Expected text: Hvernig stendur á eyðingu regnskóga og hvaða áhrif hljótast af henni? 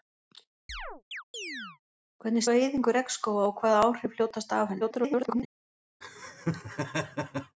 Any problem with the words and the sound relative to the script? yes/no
yes